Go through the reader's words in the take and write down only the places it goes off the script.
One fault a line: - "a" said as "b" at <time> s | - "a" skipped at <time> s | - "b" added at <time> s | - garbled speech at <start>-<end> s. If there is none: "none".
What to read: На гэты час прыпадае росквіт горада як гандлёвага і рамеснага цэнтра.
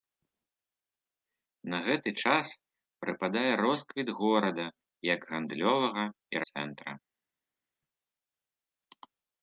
- "рамеснага" skipped at 6.4 s